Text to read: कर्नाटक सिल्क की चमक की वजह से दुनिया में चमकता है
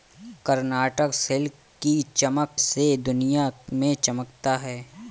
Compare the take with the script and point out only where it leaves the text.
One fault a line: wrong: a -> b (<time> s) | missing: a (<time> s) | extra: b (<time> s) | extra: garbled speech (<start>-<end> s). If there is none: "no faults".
missing: की वजह (2.6 s)